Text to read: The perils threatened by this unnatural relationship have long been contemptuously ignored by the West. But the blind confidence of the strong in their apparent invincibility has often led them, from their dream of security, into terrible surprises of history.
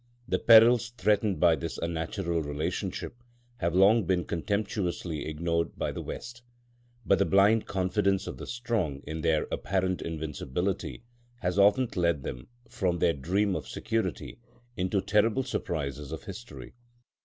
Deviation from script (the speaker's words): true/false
false